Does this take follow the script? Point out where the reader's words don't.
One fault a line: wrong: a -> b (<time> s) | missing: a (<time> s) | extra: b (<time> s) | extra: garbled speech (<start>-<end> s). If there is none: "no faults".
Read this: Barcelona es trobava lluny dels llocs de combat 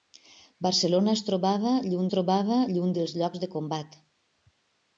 extra: trobava lluny (2.1 s)